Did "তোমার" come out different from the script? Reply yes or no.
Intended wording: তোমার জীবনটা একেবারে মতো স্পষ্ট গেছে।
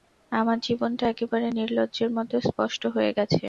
yes